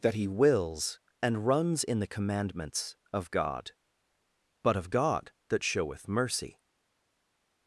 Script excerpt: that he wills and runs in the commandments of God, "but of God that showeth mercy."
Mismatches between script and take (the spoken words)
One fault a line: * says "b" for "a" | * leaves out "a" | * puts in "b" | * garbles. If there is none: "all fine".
all fine